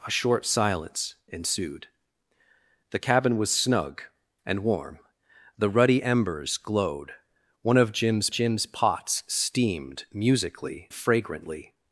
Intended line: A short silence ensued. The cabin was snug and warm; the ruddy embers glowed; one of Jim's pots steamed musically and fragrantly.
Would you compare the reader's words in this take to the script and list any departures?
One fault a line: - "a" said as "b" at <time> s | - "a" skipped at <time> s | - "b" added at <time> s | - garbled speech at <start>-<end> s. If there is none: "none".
- "Jim's" added at 8.3 s
- "and" skipped at 10.9 s